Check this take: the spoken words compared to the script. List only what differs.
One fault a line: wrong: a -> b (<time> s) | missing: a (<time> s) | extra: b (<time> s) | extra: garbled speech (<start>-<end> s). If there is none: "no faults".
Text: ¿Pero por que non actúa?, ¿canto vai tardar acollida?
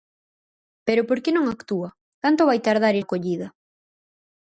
no faults